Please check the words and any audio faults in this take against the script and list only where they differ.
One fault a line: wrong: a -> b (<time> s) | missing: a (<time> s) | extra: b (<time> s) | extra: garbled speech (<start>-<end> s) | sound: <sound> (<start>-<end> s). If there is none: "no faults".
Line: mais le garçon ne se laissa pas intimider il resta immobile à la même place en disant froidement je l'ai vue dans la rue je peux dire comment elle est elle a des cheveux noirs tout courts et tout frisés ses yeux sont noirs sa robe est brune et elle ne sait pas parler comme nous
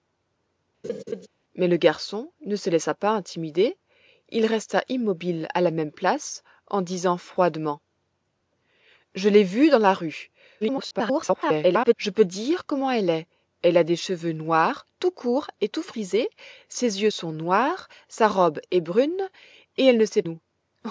sound: laugh (0.8-1.3 s)
extra: garbled speech (10.6-11.9 s)
missing: pas parler comme (20.2 s)